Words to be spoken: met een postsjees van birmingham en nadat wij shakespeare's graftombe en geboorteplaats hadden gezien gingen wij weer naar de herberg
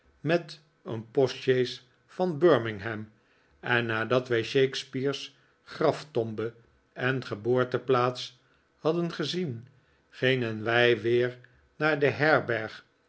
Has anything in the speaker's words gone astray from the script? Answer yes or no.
no